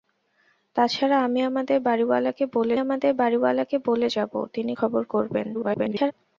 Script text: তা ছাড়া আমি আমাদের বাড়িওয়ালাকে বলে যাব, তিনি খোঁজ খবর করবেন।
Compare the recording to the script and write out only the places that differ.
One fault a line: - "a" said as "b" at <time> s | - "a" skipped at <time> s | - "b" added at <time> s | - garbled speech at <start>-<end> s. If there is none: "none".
- "আমাদের বাড়িওয়ালাকে বলে" added at 2.8 s
- "খোঁজ" skipped at 4.7 s
- garbled speech at 5.5-6.1 s